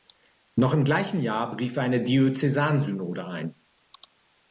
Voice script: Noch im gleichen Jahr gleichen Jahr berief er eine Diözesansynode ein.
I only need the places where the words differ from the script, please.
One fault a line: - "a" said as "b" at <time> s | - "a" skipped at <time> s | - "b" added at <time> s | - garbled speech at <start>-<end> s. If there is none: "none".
- "gleichen Jahr" skipped at 1.5 s